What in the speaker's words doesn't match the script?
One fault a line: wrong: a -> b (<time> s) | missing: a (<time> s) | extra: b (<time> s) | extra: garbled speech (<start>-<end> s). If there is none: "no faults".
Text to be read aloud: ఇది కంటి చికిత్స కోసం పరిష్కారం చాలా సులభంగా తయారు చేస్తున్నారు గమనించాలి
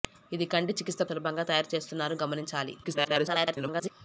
missing: కోసం పరిష్కారం చాలా (1.0 s)
extra: garbled speech (2.8-3.9 s)